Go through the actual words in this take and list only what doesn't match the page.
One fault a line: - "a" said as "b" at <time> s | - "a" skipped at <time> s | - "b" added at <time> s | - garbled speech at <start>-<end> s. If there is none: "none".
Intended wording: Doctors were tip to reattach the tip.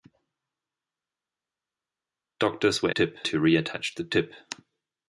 none